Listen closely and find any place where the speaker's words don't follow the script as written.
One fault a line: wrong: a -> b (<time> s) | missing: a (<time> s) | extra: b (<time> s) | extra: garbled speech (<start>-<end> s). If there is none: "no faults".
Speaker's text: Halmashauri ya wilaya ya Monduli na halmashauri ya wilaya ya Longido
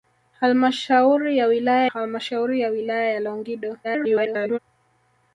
missing: ya Monduli na (1.9 s)
extra: garbled speech (3.8-4.6 s)